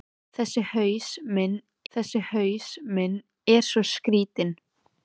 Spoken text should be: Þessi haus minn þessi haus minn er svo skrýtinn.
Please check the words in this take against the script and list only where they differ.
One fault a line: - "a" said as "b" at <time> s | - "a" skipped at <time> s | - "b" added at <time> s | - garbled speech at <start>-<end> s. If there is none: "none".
none